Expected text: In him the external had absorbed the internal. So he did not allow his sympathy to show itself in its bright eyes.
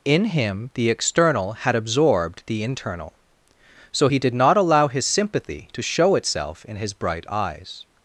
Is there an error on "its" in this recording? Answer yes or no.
yes